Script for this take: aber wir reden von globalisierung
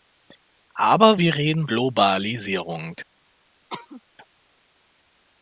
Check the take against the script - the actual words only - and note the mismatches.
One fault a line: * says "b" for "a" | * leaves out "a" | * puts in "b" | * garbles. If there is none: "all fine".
* leaves out "von"